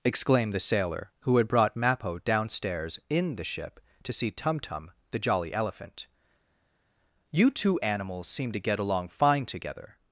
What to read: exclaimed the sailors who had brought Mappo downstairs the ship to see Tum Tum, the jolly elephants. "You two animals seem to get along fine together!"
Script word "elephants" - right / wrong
wrong